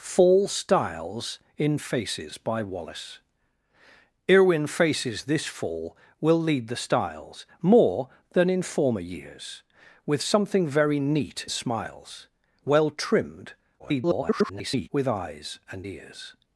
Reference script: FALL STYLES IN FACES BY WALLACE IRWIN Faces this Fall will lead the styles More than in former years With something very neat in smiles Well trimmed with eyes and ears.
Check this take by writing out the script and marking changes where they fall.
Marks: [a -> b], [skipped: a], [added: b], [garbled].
FALL STYLES IN FACES BY WALLACE IRWIN Faces this Fall will lead the styles More than in former years With something very neat [skipped: in] smiles Well trimmed [garbled] with eyes and ears.